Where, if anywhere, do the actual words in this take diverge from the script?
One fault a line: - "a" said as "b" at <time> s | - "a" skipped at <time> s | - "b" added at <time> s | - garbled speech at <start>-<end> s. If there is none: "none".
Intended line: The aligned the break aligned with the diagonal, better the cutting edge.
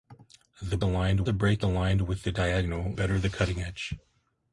none